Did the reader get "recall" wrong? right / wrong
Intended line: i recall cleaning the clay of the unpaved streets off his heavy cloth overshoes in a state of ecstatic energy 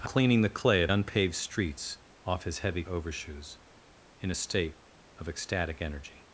wrong